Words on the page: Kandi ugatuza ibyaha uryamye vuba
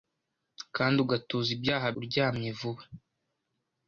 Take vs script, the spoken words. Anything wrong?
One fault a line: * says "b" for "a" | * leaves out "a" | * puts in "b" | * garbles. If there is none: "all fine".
all fine